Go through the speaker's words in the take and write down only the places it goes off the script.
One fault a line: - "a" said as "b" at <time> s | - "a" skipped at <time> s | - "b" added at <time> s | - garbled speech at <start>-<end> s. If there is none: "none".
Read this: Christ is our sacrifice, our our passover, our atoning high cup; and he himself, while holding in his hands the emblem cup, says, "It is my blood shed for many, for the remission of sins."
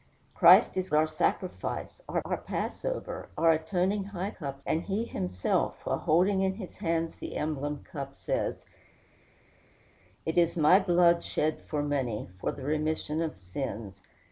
none